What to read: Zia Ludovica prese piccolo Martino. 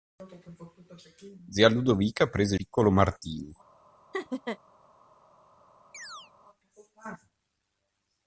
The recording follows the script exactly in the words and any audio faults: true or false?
false